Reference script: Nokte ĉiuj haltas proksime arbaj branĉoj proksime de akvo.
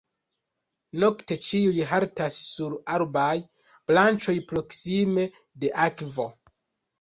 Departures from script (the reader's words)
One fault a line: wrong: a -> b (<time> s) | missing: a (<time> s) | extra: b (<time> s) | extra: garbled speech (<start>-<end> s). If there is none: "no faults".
wrong: proksime -> sur (2.5 s)